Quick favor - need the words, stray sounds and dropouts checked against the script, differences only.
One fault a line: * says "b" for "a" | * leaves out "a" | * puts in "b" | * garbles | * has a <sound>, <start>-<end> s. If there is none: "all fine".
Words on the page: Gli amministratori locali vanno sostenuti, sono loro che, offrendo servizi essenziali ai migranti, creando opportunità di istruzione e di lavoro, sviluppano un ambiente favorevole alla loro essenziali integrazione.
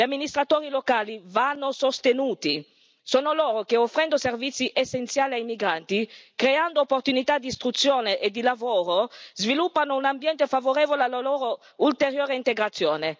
* says "ulteriore" for "essenziali"